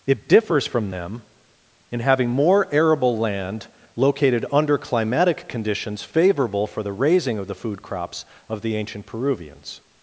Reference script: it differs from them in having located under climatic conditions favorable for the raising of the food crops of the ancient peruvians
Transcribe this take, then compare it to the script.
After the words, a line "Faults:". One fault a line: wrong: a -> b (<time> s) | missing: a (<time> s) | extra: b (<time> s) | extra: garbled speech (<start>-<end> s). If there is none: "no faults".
it differs from them in having more arable land located under climatic conditions favorable for the raising of the food crops of the ancient peruvians
Faults:
extra: more arable land (2.3 s)